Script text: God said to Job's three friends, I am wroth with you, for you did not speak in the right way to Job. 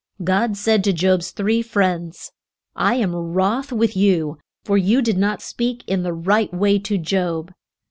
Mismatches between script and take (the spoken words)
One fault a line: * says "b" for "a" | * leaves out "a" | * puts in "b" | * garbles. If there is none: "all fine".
all fine